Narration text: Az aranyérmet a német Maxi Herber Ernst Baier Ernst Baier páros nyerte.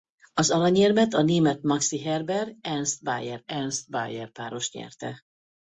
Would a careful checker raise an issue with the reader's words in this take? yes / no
no